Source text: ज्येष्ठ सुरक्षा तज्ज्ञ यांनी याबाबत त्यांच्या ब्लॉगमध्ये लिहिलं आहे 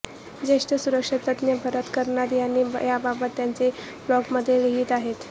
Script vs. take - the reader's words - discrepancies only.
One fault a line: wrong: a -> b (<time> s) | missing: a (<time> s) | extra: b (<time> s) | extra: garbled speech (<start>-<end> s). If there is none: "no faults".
extra: भरत कर्णाद (1.6 s)